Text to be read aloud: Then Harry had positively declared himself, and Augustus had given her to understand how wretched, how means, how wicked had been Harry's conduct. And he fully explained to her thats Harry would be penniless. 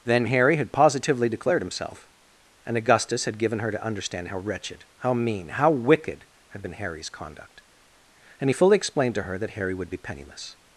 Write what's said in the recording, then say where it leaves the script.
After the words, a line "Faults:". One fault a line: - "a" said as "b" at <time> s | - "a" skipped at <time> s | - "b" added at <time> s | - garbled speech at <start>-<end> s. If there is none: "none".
Then Harry had positively declared himself, and Augustus had given her to understand how wretched, how mean, how wicked had been Harry's conduct. And he fully explained to her that Harry would be penniless.
Faults:
- "means" said as "mean" at 5.1 s
- "thats" said as "that" at 9.4 s